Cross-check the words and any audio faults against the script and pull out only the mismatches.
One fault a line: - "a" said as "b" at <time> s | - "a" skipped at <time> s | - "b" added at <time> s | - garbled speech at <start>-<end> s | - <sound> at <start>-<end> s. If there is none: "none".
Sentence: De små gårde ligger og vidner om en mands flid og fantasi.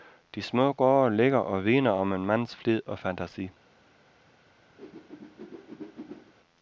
- whoosh at 4.8-6.3 s